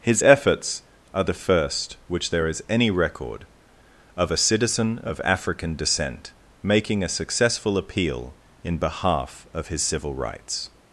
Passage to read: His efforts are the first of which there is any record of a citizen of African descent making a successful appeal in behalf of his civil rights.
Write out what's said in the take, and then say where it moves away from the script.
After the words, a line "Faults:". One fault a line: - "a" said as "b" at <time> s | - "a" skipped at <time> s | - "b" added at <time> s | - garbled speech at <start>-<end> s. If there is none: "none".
His efforts are the first which there is any record of a citizen of African descent making a successful appeal in behalf of his civil rights.
Faults:
- "of" skipped at 2.0 s